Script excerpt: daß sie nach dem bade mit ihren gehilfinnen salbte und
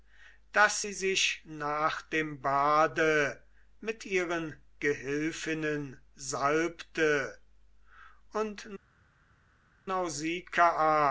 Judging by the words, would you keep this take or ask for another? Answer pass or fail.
fail